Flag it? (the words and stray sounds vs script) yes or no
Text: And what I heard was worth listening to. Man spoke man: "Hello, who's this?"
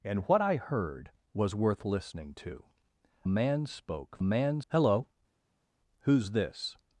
no